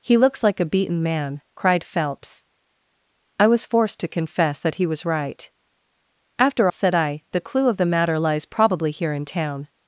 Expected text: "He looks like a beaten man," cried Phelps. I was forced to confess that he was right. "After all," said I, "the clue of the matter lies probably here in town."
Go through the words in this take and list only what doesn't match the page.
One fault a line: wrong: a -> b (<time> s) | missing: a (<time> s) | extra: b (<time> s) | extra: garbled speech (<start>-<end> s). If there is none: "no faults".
missing: all (6.7 s)